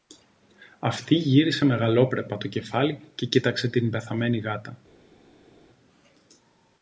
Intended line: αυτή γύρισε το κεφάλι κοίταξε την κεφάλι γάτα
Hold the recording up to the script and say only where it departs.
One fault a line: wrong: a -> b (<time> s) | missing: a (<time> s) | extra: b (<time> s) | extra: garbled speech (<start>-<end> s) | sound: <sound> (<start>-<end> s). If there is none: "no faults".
extra: μεγαλόπρεπα (1.6 s)
extra: και (3.2 s)
wrong: κεφάλι -> πεθαμένη (3.9 s)